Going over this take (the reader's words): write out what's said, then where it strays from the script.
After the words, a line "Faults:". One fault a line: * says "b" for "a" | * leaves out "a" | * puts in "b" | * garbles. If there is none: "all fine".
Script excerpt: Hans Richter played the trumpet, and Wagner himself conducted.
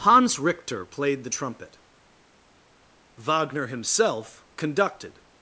Hans Richter played the trumpet, Wagner himself conducted.
Faults:
* leaves out "and"